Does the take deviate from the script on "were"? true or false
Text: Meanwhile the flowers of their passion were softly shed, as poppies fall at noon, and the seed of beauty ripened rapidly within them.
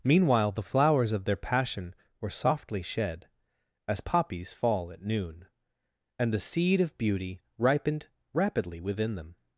false